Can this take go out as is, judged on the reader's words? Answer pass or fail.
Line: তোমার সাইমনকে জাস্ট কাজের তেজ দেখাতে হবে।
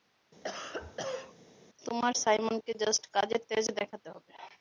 pass